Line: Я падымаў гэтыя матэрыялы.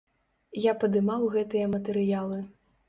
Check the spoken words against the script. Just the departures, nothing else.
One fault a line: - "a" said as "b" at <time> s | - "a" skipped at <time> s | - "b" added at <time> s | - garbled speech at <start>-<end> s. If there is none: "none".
none